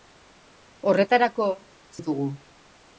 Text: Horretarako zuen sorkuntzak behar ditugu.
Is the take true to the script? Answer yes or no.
no